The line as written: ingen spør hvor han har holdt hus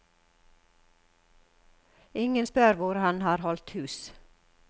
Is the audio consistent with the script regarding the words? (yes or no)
yes